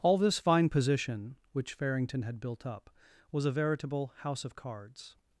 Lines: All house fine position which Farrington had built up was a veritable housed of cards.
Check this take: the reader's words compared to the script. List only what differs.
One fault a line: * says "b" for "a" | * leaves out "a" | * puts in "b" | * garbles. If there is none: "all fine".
* says "this" for "house"
* says "house" for "housed"